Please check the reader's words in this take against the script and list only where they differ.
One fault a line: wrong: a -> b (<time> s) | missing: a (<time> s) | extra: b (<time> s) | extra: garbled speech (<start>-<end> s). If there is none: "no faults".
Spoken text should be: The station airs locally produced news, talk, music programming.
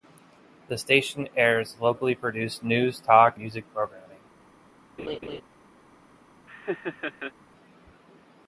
no faults